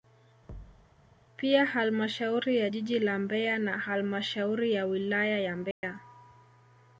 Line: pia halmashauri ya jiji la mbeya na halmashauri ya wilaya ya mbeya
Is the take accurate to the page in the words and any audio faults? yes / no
no